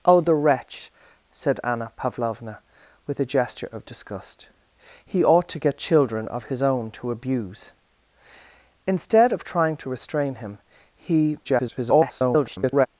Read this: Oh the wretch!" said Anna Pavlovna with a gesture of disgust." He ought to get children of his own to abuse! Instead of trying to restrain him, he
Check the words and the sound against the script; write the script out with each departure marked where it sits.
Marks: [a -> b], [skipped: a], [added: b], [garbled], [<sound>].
Oh the wretch!" said Anna Pavlovna with a gesture of disgust." He ought to get children of his own to abuse! Instead of trying to restrain him, he [garbled]